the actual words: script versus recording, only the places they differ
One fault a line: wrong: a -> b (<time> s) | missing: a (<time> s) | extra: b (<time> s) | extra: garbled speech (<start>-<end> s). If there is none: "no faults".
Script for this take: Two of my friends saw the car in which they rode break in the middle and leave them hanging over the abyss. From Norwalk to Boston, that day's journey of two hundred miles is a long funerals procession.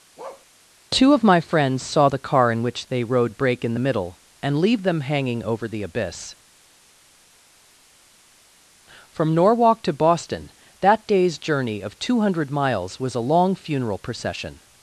wrong: is -> was (13.0 s)
wrong: funerals -> funeral (13.5 s)